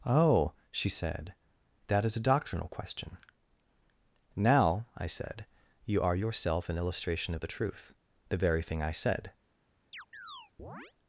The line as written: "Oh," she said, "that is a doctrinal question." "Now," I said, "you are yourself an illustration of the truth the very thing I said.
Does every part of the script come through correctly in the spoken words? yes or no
yes